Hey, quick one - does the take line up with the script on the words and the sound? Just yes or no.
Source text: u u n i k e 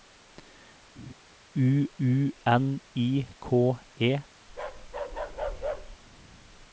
no